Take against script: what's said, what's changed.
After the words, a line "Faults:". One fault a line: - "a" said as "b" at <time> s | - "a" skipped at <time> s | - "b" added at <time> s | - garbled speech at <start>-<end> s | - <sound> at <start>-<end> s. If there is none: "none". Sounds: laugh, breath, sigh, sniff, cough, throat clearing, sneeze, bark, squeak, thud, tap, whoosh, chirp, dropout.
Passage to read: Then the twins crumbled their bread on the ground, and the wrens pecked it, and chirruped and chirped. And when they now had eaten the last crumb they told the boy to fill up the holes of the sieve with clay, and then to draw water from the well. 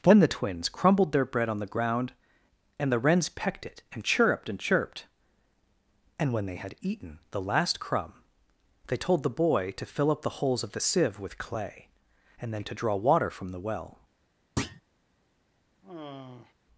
Then the twins crumbled their bread on the ground, and the wrens pecked it, and chirruped and chirped. And when they had eaten the last crumb they told the boy to fill up the holes of the sieve with clay, and then to draw water from the well.
Faults:
- "now" skipped at 6.5 s
- thud at 14.6-14.8 s
- sigh at 15.8-16.5 s